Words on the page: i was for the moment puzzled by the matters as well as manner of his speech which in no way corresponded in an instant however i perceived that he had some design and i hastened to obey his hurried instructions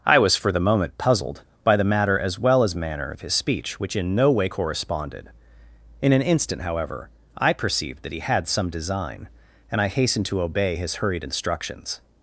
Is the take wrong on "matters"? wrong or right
wrong